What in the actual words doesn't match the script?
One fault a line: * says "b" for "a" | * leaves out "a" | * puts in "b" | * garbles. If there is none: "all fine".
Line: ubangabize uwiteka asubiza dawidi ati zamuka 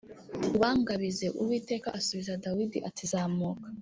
all fine